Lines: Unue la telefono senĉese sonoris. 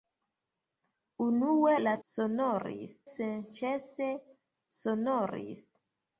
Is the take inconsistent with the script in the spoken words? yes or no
yes